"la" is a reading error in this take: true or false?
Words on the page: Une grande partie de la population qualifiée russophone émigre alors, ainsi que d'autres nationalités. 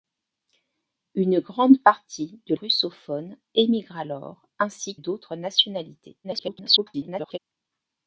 true